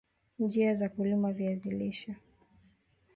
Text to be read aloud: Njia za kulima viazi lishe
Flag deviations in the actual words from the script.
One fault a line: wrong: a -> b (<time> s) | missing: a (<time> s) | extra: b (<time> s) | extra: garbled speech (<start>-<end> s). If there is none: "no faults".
no faults